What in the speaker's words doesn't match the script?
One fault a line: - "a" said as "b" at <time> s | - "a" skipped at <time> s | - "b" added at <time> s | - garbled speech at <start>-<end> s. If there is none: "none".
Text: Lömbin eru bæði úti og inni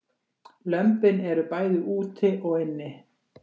none